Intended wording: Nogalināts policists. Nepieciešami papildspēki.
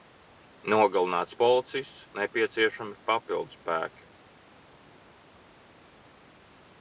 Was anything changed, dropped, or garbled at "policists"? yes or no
no